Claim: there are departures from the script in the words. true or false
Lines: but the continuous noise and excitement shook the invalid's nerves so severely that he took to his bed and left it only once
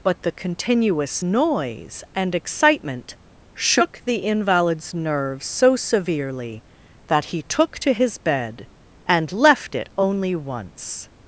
false